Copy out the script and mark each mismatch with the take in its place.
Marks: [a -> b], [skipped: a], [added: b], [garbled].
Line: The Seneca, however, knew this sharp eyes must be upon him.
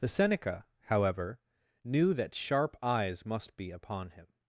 The Seneca, however, knew [this -> that] sharp eyes must be upon him.